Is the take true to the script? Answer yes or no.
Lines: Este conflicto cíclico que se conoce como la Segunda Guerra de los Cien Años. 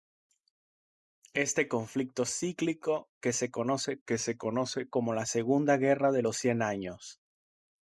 no